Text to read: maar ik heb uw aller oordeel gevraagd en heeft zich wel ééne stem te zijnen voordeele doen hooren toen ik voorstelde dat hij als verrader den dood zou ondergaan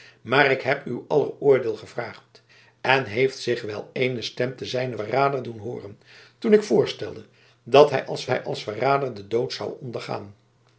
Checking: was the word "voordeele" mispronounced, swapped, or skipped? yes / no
yes